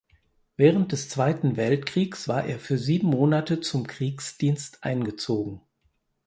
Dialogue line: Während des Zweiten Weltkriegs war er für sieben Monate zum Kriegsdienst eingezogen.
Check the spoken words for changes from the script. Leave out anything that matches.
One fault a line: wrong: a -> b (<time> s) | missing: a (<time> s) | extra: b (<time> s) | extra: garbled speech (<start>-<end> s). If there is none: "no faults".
no faults